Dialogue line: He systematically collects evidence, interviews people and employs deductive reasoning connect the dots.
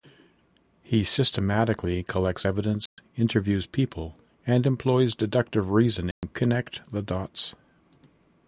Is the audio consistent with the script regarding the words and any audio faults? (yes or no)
no